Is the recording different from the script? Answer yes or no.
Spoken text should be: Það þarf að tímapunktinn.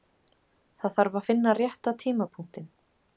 yes